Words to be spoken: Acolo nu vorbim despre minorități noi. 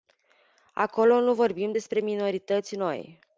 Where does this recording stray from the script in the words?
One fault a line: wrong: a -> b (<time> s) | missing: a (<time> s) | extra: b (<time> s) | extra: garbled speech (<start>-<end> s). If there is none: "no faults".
no faults